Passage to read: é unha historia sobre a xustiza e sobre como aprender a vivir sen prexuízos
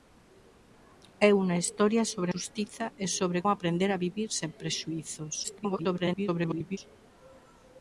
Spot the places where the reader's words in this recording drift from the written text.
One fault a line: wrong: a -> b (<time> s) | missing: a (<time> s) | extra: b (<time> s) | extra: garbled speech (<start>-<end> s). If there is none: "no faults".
missing: a (2.3 s)
missing: como (3.4 s)
extra: garbled speech (5.4-6.8 s)